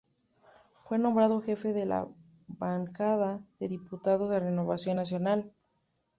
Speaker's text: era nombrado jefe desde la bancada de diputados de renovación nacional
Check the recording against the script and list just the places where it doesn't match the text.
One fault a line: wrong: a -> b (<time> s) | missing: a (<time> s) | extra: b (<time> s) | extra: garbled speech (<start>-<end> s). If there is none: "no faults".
wrong: era -> fue (0.8 s)
wrong: desde -> de (1.7 s)